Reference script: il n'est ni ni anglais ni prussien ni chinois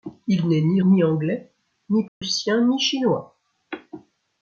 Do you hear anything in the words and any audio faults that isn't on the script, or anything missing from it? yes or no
yes